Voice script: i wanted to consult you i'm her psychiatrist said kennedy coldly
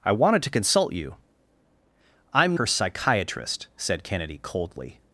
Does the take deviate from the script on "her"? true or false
false